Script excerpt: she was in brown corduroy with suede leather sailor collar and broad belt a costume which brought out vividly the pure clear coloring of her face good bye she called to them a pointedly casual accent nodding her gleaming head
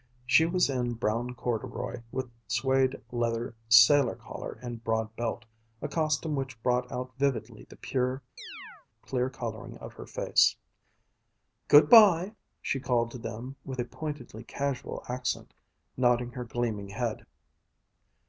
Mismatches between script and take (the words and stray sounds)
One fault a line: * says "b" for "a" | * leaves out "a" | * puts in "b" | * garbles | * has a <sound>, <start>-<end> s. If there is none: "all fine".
* has a chirp, 8.4-8.9 s
* puts in "with"